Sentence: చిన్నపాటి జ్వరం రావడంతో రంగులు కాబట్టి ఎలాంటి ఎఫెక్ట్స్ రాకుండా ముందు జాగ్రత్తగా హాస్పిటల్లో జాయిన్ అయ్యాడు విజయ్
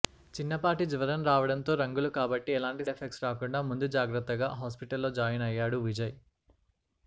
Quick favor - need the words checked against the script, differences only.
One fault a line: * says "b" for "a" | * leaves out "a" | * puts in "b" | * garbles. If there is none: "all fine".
all fine